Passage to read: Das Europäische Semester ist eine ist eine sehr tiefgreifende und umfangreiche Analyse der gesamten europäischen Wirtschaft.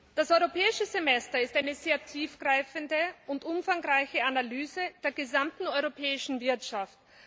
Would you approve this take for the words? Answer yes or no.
no